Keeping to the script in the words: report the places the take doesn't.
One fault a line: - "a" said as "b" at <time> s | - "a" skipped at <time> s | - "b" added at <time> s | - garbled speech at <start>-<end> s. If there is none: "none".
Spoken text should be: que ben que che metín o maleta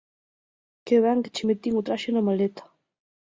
- "traxe na" added at 1.9 s